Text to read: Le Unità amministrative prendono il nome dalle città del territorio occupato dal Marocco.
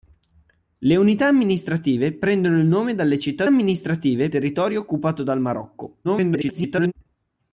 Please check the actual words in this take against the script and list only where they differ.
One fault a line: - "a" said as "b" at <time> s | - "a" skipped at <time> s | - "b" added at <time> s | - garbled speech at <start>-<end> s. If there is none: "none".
- "del" said as "amministrative" at 3.5 s
- garbled speech at 6.0-6.9 s